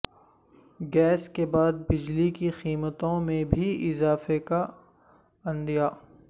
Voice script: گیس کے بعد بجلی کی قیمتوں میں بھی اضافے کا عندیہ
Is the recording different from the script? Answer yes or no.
no